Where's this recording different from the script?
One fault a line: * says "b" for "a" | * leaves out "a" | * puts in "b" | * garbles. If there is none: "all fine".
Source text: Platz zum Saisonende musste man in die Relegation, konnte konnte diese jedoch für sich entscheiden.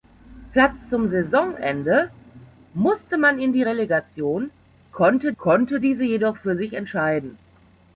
all fine